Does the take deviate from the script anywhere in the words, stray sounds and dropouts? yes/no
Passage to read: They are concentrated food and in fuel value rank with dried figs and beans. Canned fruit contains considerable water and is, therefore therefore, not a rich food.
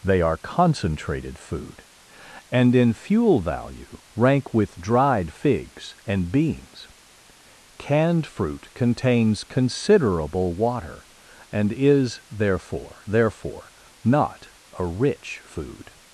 no